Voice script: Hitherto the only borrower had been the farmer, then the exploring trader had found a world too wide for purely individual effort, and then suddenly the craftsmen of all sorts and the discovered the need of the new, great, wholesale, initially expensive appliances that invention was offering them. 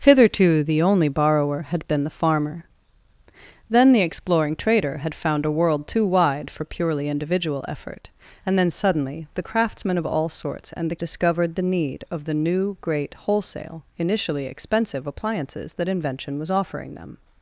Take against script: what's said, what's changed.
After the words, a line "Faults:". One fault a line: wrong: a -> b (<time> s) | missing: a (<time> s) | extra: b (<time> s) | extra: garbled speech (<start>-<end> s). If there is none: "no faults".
Hitherto the only borrower had been the farmer, then the exploring trader had found a world too wide for purely individual effort, and then suddenly the craftsmen of all sorts and the discovered the need of the new, great, wholesale, initially expensive appliances that invention was offering them.
Faults:
no faults